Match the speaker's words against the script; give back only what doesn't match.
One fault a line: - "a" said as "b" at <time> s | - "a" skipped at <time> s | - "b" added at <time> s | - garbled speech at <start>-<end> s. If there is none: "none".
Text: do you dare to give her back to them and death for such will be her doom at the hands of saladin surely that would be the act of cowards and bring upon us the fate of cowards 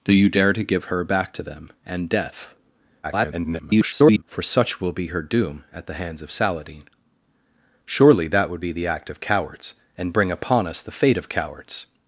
- garbled speech at 3.0-4.2 s